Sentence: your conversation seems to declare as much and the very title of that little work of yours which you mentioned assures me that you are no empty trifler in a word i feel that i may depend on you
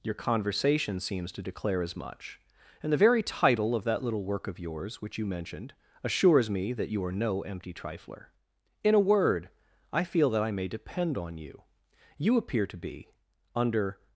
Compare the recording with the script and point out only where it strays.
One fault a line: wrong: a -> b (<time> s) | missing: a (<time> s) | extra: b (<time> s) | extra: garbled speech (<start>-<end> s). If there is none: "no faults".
extra: you appear to be under (12.2 s)